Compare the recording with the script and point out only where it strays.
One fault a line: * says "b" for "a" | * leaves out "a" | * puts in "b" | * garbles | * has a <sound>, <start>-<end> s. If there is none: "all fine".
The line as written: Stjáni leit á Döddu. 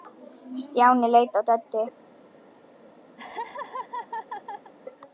* has a laugh, 3.2-4.7 s